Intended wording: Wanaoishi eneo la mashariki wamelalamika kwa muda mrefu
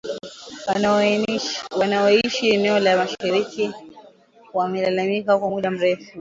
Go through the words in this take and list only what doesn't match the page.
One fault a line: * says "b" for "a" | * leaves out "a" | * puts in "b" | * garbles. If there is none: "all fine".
all fine